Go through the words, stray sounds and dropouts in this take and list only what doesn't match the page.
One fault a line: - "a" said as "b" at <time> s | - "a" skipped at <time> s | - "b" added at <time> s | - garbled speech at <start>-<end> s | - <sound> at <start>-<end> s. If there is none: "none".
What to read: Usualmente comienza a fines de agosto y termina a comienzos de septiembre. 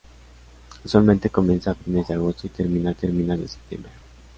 - "comienzos" said as "termina" at 2.9 s